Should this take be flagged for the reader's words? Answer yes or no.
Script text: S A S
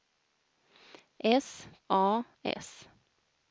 no